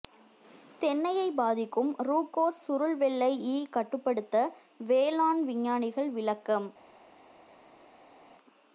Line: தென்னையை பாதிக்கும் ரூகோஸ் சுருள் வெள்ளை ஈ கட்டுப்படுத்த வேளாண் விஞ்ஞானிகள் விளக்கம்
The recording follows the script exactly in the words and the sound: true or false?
true